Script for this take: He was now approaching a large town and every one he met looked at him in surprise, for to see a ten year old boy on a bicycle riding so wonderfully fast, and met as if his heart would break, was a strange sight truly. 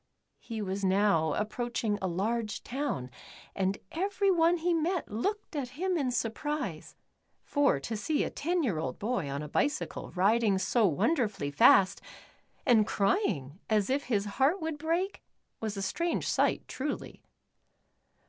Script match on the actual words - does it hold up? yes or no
no